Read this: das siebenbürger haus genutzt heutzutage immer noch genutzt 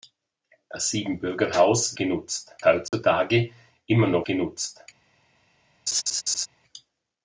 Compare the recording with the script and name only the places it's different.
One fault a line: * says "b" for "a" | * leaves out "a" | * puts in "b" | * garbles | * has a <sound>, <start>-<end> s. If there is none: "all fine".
* has a dropout, 2.9-2.9 s
* has a laugh, 5.9-6.5 s